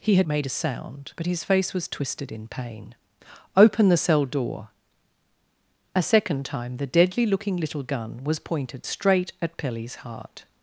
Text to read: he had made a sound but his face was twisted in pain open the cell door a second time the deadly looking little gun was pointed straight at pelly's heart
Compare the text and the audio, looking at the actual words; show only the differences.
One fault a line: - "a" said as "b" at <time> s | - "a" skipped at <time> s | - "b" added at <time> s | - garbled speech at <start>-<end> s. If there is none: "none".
none